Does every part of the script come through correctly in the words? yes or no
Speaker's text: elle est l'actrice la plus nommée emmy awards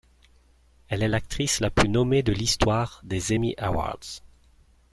no